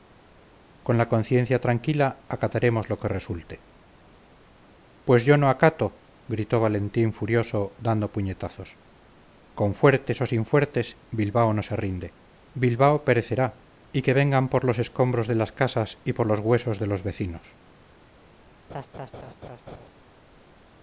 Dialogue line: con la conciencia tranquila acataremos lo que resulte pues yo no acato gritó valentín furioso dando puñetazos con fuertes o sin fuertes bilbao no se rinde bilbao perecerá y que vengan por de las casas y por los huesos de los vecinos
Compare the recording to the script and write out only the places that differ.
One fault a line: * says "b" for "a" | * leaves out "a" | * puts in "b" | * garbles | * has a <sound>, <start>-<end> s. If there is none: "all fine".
* puts in "los escombros"
* has a laugh, 18.7-19.9 s